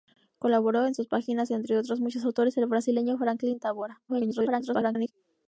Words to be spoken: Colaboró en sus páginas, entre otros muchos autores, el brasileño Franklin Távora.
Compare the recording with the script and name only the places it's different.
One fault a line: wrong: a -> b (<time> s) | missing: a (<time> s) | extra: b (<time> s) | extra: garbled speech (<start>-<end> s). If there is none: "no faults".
extra: garbled speech (4.1-5.1 s)